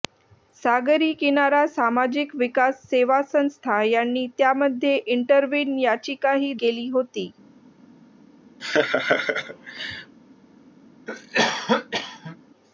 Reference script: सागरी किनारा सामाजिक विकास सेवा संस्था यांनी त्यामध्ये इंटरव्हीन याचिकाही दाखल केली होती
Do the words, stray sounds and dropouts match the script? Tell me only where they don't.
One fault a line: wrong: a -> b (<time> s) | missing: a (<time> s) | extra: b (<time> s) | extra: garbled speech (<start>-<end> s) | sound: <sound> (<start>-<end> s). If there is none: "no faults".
missing: दाखल (6.5 s)
sound: laugh (8.6-10.1 s)
sound: cough (11.1-12.4 s)